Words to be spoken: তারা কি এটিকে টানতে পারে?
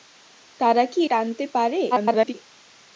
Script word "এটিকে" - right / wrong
wrong